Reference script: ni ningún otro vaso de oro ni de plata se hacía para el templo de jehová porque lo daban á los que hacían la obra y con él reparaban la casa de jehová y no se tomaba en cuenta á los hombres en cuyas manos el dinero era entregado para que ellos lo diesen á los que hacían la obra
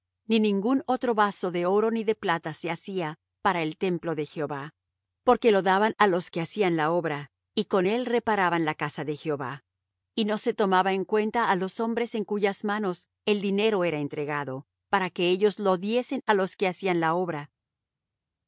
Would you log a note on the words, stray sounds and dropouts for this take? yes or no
no